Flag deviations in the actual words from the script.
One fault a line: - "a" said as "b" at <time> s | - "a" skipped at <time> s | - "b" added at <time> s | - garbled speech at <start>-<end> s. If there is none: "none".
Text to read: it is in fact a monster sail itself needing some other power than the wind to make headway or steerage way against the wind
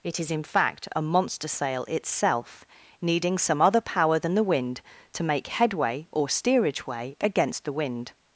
none